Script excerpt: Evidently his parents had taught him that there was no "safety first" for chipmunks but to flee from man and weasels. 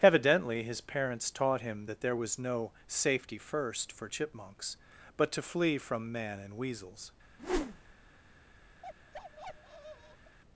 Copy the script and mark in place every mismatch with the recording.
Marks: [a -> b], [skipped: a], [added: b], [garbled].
Evidently his parents [skipped: had] taught him that there was no "safety first" for chipmunks but to flee from man and weasels.